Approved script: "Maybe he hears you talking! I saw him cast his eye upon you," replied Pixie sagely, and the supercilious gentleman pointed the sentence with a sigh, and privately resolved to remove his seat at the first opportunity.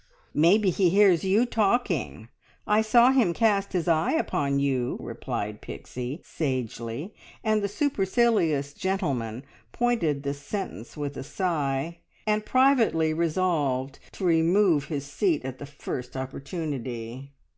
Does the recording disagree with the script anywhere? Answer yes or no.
no